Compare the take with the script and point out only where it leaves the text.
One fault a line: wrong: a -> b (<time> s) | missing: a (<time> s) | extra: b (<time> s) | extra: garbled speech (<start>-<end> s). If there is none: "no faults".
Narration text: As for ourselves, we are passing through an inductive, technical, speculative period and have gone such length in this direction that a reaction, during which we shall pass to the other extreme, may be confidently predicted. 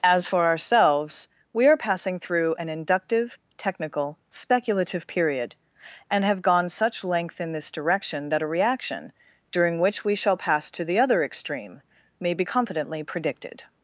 no faults